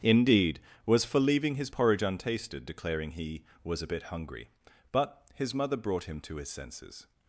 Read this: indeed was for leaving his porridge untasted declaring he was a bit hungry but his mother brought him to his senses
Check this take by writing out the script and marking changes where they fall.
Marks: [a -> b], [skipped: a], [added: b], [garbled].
indeed was for leaving his porridge untasted declaring he was a bit hungry but his mother brought him to his senses